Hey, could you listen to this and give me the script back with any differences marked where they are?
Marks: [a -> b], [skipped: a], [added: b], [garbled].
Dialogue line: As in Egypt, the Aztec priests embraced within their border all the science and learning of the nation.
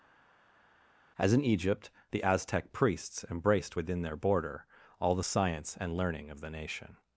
As in Egypt, the Aztec priests embraced within their border all the science and learning of the nation.